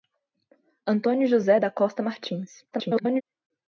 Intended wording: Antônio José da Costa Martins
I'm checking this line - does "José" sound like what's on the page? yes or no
yes